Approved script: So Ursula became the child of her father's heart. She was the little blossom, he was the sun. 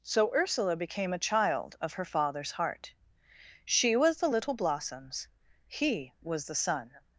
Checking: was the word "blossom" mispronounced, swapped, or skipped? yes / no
yes